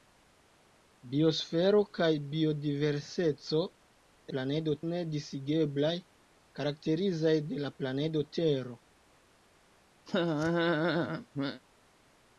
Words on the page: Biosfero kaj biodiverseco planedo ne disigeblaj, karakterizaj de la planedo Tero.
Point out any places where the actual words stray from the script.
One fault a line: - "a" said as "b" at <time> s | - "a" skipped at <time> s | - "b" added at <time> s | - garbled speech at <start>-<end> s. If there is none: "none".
none